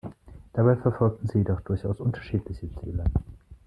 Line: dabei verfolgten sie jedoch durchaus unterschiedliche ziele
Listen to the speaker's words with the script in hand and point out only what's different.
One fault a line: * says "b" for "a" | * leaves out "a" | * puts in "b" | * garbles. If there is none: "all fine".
all fine